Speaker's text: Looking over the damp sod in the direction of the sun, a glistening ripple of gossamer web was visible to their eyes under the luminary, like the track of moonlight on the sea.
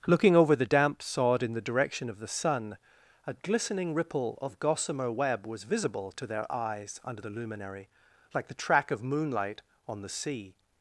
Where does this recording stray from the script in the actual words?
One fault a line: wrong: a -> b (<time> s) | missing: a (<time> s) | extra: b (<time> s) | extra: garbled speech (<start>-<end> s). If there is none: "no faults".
no faults